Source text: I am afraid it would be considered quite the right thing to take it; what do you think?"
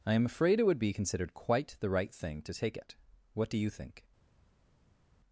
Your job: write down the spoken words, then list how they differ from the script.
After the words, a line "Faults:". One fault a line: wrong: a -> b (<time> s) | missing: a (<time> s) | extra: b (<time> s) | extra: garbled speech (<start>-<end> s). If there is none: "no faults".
I am afraid it would be considered quite the right thing to take it; what do you think?"
Faults:
no faults